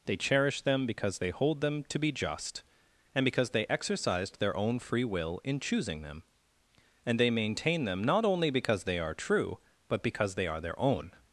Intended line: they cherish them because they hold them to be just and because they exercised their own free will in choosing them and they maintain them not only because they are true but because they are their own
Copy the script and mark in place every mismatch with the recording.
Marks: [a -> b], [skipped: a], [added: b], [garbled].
they cherish them because they hold them to be just and because they exercised their own free will in choosing them and they maintain them not only because they are true but because they are their own